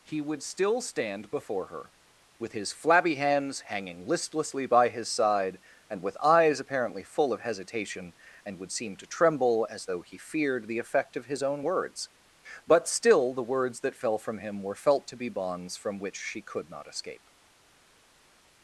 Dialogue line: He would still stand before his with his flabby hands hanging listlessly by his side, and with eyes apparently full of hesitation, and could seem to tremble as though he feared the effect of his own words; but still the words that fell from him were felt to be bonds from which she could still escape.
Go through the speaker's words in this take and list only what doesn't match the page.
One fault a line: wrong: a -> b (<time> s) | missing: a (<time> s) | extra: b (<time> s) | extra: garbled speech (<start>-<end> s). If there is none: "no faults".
wrong: his -> her (1.7 s)
wrong: could -> would (8.6 s)
wrong: still -> not (16.7 s)